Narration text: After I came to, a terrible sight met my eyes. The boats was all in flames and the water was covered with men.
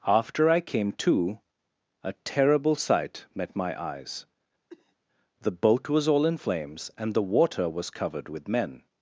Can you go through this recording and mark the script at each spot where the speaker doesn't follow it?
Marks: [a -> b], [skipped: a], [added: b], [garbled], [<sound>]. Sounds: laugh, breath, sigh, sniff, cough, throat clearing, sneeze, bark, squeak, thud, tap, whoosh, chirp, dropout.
After I came to, a terrible sight met my eyes. [cough] The [boats -> boat] was all in flames and the water was covered with men.